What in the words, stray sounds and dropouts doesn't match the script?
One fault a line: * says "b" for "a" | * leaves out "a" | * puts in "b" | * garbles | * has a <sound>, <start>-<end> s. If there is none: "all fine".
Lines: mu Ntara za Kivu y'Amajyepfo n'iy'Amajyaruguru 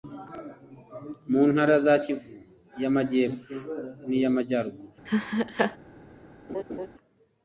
* has a laugh, 5.1-5.8 s
* has a laugh, 6.5-6.9 s